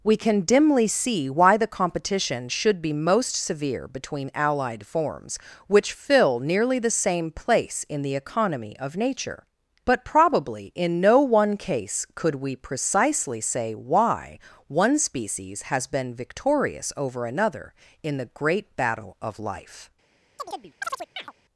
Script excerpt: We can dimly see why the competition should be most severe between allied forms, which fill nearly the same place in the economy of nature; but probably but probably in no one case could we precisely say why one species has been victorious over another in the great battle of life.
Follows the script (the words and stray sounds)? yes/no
no